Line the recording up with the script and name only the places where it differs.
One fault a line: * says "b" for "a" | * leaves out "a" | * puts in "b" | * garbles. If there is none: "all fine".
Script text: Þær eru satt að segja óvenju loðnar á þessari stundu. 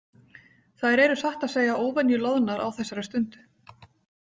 all fine